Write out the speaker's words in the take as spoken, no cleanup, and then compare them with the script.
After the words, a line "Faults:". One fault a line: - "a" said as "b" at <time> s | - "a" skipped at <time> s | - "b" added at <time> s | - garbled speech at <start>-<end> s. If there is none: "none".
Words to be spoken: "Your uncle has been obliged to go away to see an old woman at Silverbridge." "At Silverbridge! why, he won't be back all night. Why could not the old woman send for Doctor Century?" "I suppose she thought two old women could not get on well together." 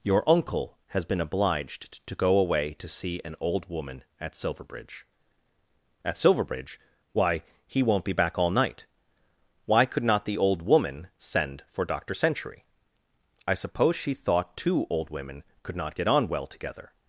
"Your uncle has been obliged to go away to see an old woman at Silverbridge." "At Silverbridge! why, he won't be back all night. Why could not the old woman send for Doctor Century?" "I suppose she thought two old women could not get on well together."
Faults:
none